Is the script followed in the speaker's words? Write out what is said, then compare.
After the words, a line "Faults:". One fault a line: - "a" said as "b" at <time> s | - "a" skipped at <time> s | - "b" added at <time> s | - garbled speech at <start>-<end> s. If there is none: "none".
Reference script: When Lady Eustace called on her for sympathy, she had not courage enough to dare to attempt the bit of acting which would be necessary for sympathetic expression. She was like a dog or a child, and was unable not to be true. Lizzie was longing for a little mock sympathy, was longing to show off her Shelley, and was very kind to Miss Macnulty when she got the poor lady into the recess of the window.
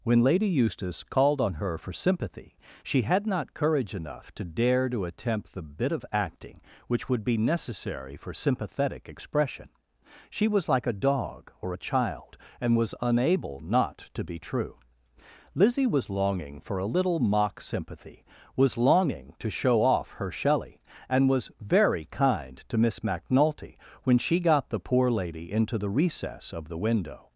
When Lady Eustace called on her for sympathy, she had not courage enough to dare to attempt the bit of acting which would be necessary for sympathetic expression. She was like a dog or a child, and was unable not to be true. Lizzie was longing for a little mock sympathy, was longing to show off her Shelley, and was very kind to Miss Macnulty when she got the poor lady into the recess of the window.
Faults:
none